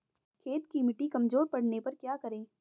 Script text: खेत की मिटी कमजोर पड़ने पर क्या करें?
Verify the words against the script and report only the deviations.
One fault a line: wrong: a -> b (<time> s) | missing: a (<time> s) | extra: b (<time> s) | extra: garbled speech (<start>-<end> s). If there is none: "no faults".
no faults